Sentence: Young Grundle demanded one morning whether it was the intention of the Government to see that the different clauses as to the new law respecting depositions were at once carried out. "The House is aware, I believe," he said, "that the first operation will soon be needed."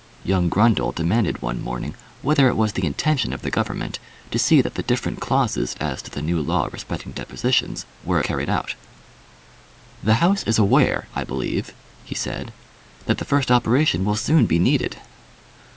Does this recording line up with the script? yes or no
no